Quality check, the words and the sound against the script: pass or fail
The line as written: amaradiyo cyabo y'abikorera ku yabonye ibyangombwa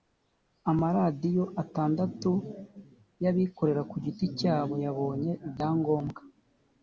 fail